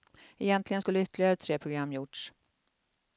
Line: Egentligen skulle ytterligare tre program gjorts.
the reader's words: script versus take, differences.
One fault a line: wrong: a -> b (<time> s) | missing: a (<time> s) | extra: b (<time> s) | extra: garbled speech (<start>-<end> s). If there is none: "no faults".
no faults